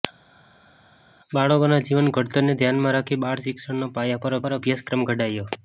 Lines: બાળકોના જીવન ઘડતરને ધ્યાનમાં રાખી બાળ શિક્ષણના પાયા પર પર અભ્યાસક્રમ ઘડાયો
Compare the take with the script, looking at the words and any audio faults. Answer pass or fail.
pass